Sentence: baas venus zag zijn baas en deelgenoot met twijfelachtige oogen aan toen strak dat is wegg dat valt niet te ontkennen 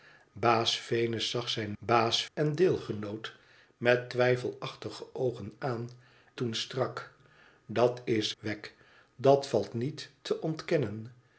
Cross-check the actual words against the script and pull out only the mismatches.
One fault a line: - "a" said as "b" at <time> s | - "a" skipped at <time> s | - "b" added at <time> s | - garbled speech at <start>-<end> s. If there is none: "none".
none